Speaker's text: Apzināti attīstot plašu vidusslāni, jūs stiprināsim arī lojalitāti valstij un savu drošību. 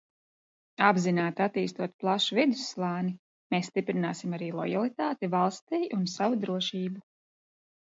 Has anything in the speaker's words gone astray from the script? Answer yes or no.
yes